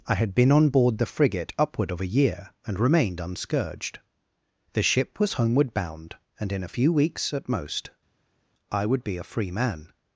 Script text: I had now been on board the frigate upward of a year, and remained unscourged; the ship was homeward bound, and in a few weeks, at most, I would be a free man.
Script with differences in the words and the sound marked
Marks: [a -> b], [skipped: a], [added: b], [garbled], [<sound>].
I had [skipped: now] been on board the frigate upward of a year, and remained unscourged; the ship was homeward bound, and in a few weeks, at most, I would be a free man.